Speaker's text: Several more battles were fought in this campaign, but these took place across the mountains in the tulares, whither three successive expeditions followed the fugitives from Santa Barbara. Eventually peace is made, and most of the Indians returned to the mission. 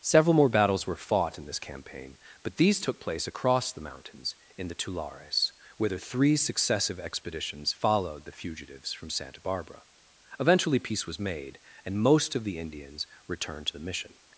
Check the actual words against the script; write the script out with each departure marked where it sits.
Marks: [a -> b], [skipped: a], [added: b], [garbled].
Several more battles were fought in this campaign, but these took place across the mountains in the tulares, whither three successive expeditions followed the fugitives from Santa Barbara. Eventually peace [is -> was] made, and most of the Indians returned to the mission.